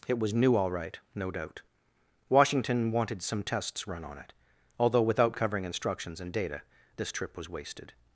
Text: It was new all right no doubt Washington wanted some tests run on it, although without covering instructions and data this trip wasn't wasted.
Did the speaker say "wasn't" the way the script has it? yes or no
no